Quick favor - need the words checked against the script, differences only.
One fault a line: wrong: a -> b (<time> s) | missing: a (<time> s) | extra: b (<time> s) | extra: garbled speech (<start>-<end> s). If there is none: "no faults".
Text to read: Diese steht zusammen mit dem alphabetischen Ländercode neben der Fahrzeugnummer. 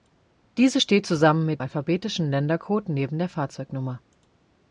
missing: dem (1.6 s)